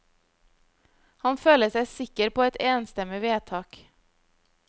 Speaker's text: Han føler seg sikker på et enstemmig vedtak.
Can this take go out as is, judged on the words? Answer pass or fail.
pass